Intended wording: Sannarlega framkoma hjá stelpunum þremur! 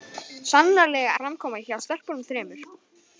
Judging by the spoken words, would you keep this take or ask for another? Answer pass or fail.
pass